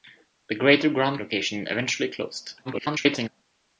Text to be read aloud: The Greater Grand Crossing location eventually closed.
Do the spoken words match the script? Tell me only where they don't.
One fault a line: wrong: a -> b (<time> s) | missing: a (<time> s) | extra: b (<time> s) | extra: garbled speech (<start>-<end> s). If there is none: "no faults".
missing: Crossing (1.2 s)
extra: garbled speech (2.6-3.3 s)